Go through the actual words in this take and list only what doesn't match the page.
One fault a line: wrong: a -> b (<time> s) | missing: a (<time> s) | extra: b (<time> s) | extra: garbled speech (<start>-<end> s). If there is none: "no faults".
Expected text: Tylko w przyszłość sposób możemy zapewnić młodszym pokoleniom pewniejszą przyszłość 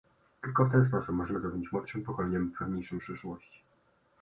wrong: przyszłość -> ten (0.7 s)